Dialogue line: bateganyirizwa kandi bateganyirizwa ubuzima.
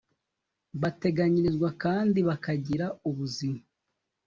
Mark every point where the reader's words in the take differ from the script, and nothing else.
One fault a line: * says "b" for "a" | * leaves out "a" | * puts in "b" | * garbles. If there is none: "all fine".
* says "bakagira" for "bateganyirizwa"